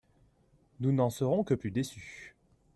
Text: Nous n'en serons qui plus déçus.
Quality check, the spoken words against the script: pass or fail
fail